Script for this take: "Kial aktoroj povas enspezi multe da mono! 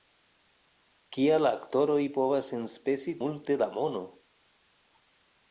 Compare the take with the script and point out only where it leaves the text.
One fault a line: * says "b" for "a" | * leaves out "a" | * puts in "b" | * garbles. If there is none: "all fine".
all fine